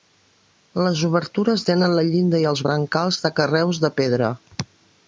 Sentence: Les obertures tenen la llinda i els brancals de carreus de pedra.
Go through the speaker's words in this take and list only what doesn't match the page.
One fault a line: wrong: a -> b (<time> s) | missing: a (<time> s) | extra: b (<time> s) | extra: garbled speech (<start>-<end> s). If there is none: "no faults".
no faults